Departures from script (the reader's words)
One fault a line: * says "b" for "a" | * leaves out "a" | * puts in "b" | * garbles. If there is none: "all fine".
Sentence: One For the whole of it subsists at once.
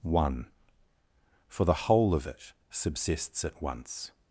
all fine